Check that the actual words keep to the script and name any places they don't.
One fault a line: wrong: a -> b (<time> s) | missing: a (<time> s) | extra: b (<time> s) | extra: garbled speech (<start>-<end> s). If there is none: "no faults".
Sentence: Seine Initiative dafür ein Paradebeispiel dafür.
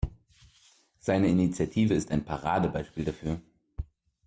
wrong: dafür -> ist (1.9 s)